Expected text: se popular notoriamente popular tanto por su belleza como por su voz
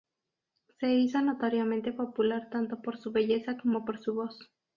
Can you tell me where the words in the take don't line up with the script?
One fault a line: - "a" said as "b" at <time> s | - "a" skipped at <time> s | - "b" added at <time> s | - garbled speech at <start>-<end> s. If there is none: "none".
- "popular" said as "hizo" at 0.9 s